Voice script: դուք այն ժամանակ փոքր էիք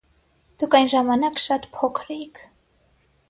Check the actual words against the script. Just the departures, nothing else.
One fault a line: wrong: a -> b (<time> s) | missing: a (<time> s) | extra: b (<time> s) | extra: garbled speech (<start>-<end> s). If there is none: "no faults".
extra: շատ (1.4 s)